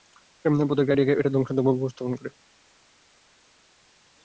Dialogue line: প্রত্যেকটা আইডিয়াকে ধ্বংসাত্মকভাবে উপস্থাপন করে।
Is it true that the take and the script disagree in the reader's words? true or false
true